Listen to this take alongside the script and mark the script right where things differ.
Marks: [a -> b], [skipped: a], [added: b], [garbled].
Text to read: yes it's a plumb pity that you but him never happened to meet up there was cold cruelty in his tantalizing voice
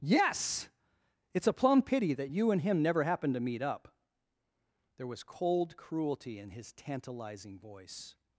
yes it's a plumb pity that you [but -> and] him never happened to meet up there was cold cruelty in his tantalizing voice